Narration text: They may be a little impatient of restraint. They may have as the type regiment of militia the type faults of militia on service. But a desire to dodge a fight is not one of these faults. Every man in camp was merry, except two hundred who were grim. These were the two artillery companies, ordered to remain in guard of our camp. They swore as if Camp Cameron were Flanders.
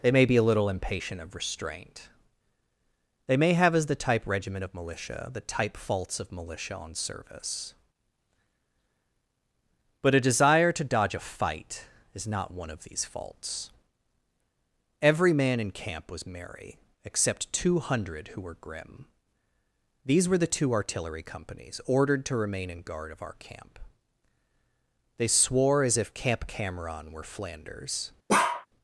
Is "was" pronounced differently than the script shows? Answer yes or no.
no